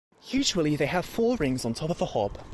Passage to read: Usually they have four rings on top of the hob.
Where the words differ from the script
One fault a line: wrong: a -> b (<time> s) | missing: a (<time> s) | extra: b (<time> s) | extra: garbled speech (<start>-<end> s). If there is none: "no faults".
no faults